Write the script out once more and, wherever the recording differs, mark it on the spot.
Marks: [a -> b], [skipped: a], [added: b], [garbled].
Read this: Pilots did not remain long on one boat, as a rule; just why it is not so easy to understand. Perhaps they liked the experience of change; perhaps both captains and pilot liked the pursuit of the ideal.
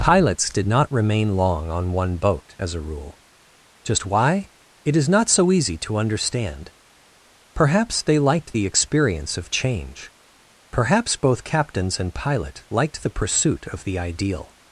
Pilots did not remain long on one boat, as a rule; just why it is not so easy to understand. Perhaps they liked the experience of change; perhaps both captains and pilot liked the pursuit of the ideal.